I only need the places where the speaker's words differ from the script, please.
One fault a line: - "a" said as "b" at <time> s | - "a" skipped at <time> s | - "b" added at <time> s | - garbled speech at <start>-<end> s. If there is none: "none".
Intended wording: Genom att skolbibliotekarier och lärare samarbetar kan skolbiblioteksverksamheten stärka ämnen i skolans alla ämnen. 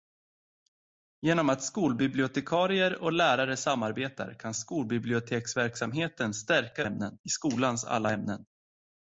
none